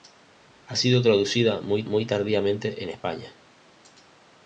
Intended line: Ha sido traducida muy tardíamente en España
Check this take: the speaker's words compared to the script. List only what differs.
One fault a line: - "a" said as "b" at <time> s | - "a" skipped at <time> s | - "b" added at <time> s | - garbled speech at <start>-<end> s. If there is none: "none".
- "muy" added at 1.8 s